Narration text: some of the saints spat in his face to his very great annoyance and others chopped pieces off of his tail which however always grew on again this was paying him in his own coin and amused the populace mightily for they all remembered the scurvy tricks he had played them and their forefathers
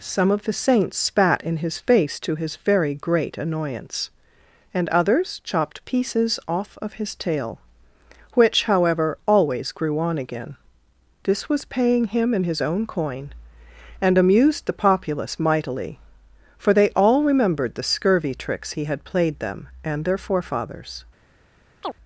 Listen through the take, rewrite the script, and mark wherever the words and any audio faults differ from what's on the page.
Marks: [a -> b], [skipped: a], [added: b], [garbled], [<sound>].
some of the saints spat in his face to his very great annoyance and others chopped pieces off of his tail which however always grew on again this was paying him in his own coin and amused the populace mightily for they all remembered the scurvy tricks he had played them and their forefathers [chirp]